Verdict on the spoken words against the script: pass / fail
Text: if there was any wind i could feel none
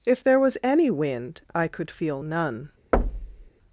pass